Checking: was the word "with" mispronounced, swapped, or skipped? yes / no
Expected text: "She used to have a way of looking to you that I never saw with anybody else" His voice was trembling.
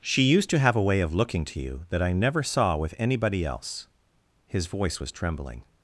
no